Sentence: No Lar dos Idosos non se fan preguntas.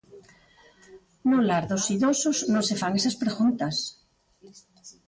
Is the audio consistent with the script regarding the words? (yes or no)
no